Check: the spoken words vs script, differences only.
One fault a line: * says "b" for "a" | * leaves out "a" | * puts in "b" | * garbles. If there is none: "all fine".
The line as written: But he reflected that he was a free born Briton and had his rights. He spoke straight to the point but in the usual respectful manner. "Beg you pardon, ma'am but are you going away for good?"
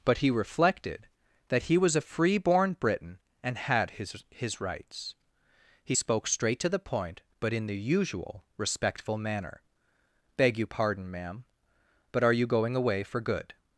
* puts in "his"